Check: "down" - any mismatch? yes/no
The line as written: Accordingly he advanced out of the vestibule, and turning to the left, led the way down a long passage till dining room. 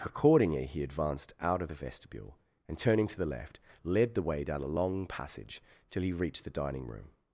no